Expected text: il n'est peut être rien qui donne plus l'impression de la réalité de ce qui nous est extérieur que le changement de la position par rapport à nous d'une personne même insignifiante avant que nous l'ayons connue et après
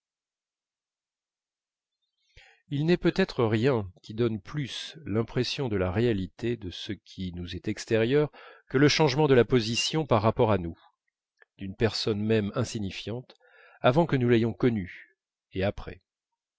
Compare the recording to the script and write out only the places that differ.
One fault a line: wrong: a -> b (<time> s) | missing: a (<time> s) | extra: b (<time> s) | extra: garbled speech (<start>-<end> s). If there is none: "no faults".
no faults